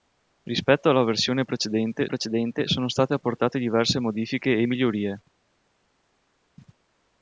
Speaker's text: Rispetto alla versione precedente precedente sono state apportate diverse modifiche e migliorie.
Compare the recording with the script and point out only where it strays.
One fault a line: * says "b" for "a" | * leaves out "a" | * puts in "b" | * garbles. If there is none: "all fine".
all fine